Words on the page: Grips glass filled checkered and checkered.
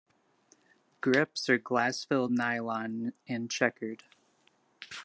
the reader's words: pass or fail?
fail